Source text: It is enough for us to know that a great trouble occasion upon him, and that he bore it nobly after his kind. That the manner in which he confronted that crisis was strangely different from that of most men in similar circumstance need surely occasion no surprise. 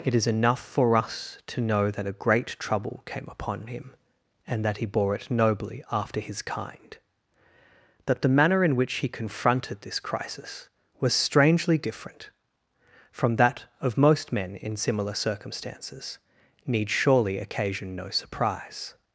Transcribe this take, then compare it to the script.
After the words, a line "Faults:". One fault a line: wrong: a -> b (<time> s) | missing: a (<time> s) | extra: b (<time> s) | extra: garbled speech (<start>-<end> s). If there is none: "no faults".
It is enough for us to know that a great trouble came upon him, and that he bore it nobly after his kind. That the manner in which he confronted this crisis was strangely different from that of most men in similar circumstances need surely occasion no surprise.
Faults:
wrong: occasion -> came (3.1 s)
wrong: that -> this (9.8 s)
wrong: circumstance -> circumstances (15.1 s)